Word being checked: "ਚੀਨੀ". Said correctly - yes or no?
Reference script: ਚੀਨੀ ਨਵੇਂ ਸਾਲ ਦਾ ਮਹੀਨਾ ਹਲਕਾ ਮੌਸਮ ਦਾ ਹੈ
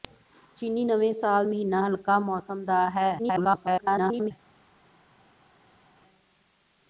yes